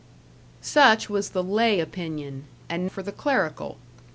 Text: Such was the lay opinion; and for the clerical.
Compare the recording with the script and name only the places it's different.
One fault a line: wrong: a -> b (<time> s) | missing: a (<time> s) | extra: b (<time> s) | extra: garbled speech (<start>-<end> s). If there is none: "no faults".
no faults